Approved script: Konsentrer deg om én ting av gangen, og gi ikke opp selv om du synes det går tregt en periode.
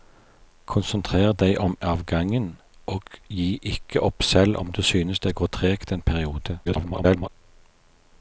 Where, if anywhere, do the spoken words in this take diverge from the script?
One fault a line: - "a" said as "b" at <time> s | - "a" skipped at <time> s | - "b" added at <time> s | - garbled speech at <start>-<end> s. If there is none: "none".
- "én ting" skipped at 1.8 s
- garbled speech at 6.6-7.3 s